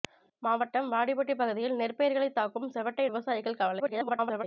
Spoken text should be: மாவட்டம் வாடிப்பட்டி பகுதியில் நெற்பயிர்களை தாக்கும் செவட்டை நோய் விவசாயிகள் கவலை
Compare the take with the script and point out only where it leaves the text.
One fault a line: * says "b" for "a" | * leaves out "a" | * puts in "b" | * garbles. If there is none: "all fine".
* leaves out "நோய்"
* garbles